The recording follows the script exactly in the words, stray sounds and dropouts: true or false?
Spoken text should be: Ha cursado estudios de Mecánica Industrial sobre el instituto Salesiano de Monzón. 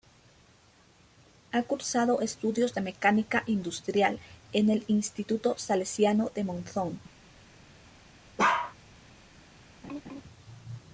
false